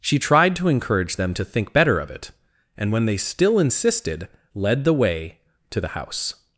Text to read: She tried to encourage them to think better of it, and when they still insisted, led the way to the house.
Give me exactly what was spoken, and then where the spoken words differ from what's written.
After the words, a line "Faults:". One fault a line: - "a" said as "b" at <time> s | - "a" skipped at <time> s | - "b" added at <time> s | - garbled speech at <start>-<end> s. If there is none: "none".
She tried to encourage them to think better of it, and when they still insisted, led the way to the house.
Faults:
none